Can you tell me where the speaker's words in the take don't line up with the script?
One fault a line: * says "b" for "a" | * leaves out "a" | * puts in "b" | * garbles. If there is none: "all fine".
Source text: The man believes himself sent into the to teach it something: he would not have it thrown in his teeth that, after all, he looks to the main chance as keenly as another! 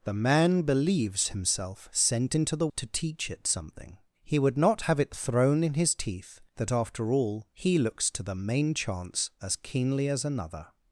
all fine